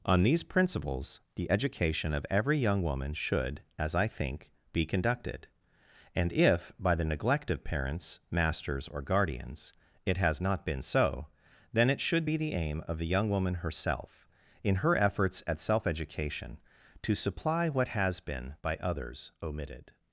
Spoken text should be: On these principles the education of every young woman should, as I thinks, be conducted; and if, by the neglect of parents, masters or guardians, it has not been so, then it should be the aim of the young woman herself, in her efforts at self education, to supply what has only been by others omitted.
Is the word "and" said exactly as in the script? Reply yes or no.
yes